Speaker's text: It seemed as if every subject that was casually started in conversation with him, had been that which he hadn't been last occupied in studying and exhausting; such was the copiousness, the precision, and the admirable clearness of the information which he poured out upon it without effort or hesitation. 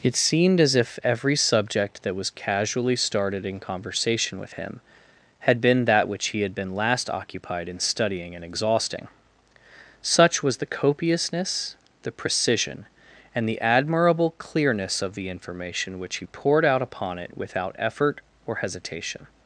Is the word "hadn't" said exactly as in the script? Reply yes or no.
no